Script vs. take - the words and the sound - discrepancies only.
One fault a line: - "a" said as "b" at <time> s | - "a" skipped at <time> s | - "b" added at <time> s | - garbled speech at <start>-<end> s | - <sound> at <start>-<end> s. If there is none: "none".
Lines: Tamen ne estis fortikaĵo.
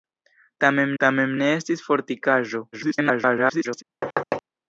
- "tamen" added at 1.0 s
- garbled speech at 2.7-3.8 s
- thud at 4.0-4.4 s